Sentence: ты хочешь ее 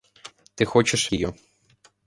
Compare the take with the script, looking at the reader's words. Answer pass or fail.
pass